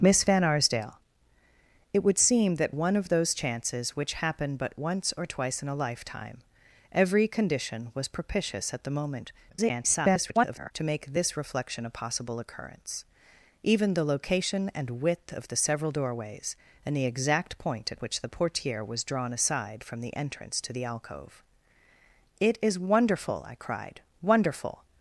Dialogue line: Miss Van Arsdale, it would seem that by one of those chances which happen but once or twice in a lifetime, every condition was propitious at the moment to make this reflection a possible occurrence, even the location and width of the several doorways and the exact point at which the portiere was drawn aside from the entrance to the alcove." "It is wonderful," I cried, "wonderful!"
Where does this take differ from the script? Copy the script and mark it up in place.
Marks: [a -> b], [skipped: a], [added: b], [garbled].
Miss Van Arsdale, it would seem that [skipped: by] one of those chances which happen but once or twice in a lifetime, every condition was propitious at the moment [garbled] to make this reflection a possible occurrence, even the location and width of the several doorways and the exact point at which the portiere was drawn aside from the entrance to the alcove." "It is wonderful," I cried, "wonderful!"